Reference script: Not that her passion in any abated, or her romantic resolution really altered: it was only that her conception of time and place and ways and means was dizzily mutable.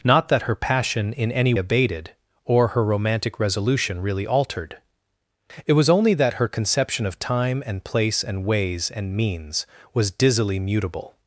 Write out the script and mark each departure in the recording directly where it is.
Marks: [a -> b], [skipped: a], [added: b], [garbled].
Not that her passion in any abated, or her romantic resolution really altered: it was only that her conception of time and place and ways and means was dizzily mutable.